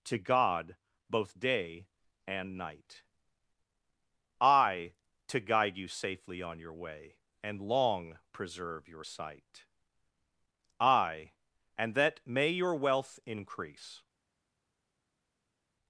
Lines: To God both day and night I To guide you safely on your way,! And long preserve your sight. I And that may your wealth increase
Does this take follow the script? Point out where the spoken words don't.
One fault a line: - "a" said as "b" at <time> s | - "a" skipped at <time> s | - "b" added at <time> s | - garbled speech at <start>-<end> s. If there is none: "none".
none